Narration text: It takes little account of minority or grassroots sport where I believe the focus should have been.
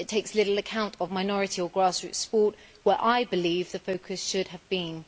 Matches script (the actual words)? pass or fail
pass